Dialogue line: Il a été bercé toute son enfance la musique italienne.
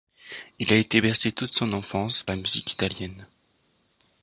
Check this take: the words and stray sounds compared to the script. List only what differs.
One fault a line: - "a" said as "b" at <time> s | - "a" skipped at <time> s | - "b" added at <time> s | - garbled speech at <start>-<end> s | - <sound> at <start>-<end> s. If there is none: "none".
none